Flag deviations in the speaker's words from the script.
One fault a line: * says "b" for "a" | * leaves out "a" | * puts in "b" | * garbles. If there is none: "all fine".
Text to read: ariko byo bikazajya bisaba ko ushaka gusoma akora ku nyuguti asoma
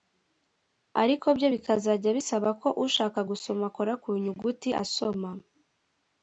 all fine